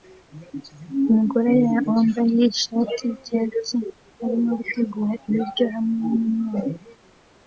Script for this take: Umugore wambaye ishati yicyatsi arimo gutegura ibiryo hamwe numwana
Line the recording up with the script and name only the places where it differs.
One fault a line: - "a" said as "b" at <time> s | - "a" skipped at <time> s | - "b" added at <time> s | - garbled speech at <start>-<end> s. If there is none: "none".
none